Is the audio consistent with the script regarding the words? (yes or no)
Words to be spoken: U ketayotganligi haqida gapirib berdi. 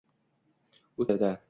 no